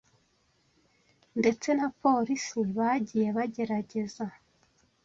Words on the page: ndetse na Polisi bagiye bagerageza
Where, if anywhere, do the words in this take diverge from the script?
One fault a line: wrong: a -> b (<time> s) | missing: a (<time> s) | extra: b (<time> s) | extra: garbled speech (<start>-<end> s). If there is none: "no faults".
no faults